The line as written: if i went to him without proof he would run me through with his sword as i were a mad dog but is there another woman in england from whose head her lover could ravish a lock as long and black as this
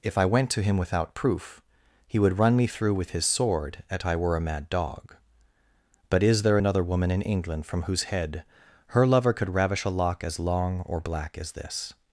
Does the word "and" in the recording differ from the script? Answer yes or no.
yes